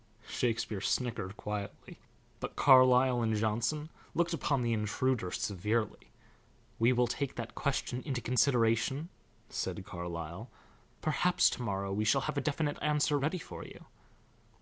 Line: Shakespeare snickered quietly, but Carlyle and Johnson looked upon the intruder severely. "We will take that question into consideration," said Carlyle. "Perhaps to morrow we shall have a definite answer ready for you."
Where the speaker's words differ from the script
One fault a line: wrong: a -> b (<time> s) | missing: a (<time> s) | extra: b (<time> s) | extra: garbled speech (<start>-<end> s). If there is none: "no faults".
no faults